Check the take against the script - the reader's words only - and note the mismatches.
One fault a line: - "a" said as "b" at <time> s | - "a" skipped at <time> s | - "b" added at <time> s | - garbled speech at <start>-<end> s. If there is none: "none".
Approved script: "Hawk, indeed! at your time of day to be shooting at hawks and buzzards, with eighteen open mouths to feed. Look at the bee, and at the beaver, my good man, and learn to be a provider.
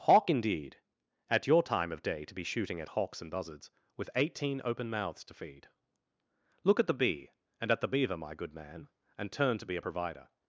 - "learn" said as "turn" at 9.3 s